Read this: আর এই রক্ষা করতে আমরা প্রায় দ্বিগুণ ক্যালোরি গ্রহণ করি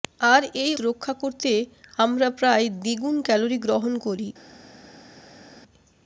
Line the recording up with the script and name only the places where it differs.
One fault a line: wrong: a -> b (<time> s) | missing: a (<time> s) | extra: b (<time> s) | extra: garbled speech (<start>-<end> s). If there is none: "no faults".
no faults